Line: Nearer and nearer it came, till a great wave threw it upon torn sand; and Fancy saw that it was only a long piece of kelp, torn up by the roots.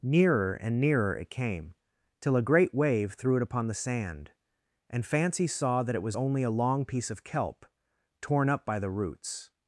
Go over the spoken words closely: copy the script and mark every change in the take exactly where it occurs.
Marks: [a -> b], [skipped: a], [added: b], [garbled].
Nearer and nearer it came, till a great wave threw it upon [torn -> the] sand; and Fancy saw that it was only a long piece of kelp, torn up by the roots.